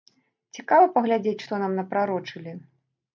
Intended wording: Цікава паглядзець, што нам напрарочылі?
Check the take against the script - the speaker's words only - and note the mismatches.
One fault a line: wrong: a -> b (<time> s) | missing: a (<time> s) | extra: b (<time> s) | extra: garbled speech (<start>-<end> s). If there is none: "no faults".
no faults